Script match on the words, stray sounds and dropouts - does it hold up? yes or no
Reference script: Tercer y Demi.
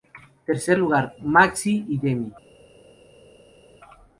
no